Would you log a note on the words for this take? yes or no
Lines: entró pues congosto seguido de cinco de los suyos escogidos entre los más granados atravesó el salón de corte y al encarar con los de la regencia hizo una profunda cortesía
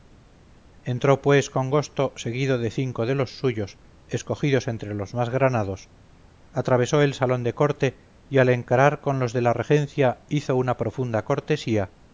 no